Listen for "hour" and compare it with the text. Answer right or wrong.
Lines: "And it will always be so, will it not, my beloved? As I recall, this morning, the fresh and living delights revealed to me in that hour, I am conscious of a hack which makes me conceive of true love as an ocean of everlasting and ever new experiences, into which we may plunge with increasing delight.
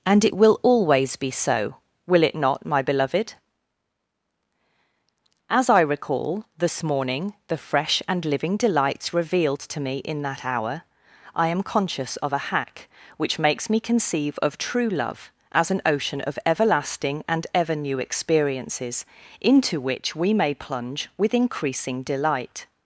right